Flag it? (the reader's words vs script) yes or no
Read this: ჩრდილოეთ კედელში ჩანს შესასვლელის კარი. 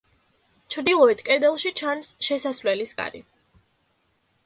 no